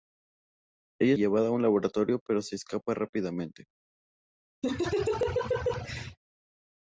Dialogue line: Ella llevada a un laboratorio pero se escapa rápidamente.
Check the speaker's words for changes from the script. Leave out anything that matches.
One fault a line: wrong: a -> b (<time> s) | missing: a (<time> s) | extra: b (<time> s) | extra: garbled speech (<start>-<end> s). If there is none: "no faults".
no faults